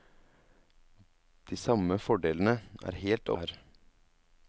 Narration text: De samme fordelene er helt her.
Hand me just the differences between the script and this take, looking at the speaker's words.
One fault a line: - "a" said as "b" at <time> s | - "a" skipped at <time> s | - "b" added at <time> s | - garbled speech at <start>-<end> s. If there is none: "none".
none